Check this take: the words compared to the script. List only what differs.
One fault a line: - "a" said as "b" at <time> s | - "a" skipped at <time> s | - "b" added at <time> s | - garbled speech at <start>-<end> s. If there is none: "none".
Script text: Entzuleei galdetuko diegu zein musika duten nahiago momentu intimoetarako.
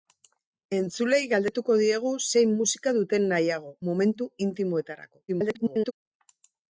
- garbled speech at 5.3-5.9 s